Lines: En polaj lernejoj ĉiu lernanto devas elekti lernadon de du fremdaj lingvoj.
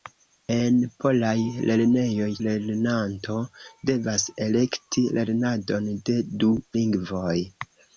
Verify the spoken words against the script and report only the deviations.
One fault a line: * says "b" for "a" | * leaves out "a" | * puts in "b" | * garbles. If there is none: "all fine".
* leaves out "ĉiu"
* leaves out "fremdaj"